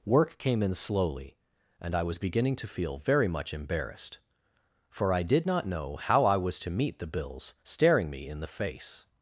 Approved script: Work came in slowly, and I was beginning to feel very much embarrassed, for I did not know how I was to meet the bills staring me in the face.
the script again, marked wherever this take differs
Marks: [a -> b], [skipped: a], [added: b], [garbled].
Work came in slowly, and I was beginning to feel very much embarrassed, for I did not know how I was to meet the bills staring me in the face.